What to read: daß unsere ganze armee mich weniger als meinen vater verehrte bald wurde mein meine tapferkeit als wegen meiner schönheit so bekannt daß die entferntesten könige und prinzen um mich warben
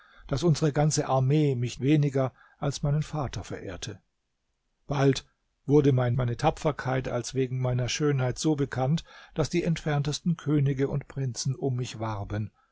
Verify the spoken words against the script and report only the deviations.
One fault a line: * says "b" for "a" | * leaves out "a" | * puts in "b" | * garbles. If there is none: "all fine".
all fine